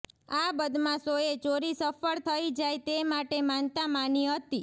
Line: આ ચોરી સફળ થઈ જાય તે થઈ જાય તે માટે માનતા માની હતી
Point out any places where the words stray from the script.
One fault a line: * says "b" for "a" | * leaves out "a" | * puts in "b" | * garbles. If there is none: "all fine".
* puts in "બદમાશોએ"
* leaves out "થઈ જાય તે"